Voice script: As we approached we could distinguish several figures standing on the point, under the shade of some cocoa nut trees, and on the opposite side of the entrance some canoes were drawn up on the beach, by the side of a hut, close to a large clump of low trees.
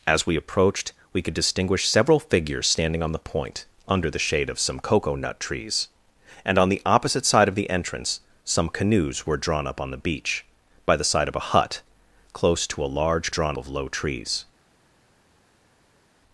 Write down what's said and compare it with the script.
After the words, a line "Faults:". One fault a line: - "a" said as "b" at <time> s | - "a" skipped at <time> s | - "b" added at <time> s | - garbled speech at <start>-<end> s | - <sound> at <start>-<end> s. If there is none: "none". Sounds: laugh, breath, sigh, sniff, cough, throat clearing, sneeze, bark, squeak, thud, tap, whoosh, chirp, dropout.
As we approached we could distinguish several figures standing on the point, under the shade of some cocoa nut trees, and on the opposite side of the entrance some canoes were drawn up on the beach, by the side of a hut, close to a large drawn of low trees.
Faults:
- "clump" said as "drawn" at 13.3 s